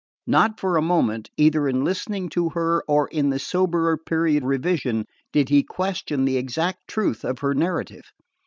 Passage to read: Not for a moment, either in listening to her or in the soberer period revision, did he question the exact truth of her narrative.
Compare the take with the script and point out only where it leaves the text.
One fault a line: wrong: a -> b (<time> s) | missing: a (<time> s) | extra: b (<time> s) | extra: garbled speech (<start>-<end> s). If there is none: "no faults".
no faults